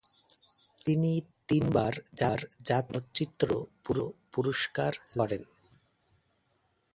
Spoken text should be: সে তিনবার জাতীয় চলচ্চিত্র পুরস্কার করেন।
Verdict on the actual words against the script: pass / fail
fail